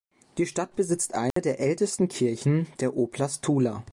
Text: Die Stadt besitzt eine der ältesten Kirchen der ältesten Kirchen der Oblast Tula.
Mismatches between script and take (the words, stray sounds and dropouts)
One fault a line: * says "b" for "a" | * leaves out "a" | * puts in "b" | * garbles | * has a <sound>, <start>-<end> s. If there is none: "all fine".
* has a dropout, 1.3-1.4 s
* leaves out "ältesten Kirchen der"